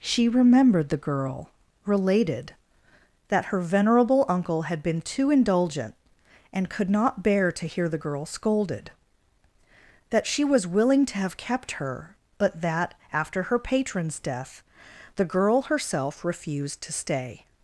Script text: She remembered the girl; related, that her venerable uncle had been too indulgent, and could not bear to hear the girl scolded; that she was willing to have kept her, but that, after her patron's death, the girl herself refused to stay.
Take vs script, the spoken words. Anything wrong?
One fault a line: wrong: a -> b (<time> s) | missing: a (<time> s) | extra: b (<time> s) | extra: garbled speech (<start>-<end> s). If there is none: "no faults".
no faults